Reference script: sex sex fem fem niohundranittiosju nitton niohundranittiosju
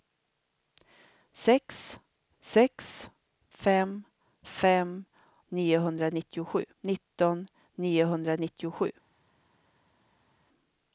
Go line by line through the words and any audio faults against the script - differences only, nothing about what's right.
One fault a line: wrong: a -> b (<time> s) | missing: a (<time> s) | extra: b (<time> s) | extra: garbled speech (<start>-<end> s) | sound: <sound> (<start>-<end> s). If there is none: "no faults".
no faults